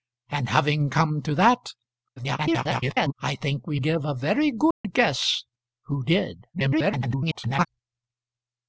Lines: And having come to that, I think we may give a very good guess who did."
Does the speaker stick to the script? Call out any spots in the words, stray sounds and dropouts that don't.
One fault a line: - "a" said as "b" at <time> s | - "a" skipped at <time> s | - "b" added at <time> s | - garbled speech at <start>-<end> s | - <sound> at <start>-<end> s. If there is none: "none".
- garbled speech at 2.2-3.1 s
- "may" skipped at 3.8 s
- dropout at 4.7-4.8 s
- garbled speech at 6.5-7.7 s